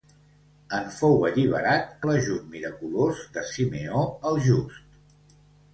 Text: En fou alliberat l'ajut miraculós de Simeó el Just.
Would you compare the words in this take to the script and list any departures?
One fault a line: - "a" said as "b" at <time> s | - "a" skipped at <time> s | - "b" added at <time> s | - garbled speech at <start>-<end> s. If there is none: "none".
none